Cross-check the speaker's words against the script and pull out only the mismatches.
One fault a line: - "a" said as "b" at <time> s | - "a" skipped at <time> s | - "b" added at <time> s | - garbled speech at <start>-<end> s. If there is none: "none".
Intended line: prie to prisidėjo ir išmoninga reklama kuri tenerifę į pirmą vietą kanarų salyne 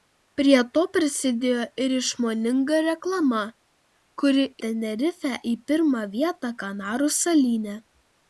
none